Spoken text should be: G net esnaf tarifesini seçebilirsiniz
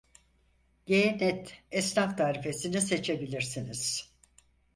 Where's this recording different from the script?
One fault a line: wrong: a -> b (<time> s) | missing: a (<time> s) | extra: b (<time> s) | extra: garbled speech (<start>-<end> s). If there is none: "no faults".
no faults